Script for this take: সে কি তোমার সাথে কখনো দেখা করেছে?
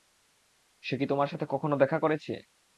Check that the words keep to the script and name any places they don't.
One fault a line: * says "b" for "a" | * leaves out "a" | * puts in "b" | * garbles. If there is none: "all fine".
all fine